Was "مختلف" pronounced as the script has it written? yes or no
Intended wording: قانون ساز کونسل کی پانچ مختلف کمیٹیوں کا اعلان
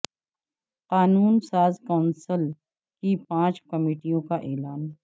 no